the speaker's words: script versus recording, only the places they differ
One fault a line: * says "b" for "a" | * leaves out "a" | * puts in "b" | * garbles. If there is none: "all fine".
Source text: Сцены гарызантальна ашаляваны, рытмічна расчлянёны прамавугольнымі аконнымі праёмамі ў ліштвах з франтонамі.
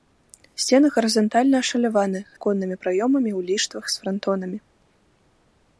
* leaves out "рытмічна расчлянёны прамавугольнымі"